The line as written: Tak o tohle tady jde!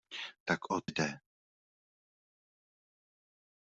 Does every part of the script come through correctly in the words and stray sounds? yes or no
no